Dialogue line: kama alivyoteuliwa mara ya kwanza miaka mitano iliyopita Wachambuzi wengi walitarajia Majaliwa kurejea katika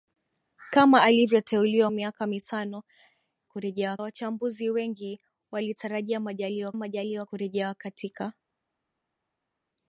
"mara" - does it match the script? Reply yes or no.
no